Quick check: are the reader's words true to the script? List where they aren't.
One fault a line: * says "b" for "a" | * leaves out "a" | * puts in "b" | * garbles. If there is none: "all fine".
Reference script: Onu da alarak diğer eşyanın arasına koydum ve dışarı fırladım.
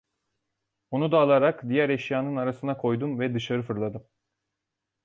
all fine